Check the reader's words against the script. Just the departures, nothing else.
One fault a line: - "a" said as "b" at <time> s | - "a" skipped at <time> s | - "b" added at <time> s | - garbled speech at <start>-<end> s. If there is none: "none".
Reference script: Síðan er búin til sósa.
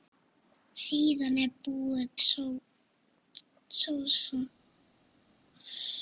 - "til" skipped at 2.1 s